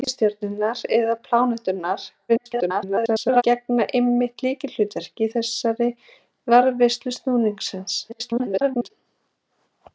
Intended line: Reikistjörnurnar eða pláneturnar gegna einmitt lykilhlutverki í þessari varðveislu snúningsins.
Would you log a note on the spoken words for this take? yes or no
yes